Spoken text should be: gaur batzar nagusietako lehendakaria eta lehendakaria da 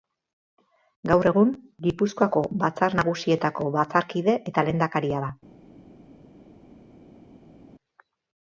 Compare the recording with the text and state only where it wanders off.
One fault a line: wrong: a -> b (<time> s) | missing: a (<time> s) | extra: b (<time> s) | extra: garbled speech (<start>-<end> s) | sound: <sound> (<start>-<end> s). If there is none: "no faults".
extra: egun gipuzkoako (1.3 s)
wrong: lehendakaria -> batzarkide (3.8 s)